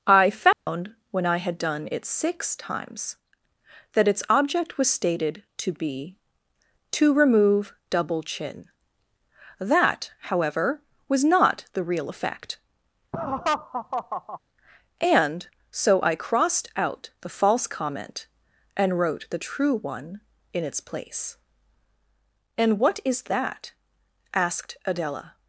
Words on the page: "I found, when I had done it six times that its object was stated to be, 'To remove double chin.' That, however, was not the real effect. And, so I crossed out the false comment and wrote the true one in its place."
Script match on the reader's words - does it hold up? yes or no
no